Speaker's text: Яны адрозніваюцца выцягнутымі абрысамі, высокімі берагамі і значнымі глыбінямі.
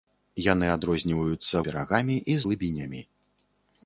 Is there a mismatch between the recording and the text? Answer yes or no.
yes